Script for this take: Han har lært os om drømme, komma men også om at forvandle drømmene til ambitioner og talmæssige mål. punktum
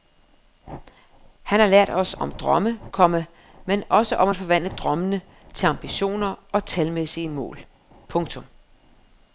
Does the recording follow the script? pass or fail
pass